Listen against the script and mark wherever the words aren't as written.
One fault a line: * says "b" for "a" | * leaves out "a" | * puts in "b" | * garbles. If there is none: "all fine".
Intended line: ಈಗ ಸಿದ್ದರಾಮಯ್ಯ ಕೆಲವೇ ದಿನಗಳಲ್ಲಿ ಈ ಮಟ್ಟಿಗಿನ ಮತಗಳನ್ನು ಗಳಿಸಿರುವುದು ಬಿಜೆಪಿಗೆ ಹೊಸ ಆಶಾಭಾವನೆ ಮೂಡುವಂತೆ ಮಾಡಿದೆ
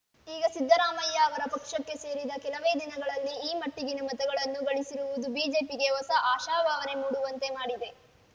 * puts in "ಅವರ ಪಕ್ಷಕ್ಕೆ ಸೇರಿದ"